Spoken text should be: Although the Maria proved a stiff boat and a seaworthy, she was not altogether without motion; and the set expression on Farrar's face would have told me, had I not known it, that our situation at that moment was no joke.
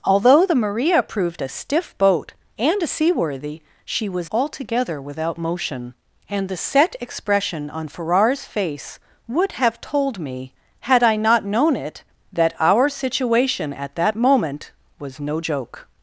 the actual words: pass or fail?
fail